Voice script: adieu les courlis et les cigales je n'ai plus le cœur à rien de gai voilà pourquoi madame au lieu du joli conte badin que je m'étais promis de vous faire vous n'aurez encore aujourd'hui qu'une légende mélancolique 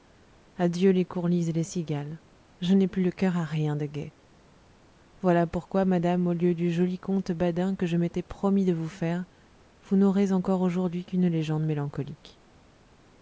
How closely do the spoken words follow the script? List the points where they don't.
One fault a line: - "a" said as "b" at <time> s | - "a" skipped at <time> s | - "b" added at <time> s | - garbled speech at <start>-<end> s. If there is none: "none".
none